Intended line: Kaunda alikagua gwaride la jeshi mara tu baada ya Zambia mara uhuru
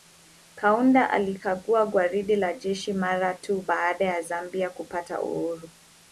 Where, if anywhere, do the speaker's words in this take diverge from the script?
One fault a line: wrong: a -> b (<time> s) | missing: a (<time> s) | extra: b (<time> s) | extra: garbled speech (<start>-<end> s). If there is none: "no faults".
wrong: mara -> kupata (4.7 s)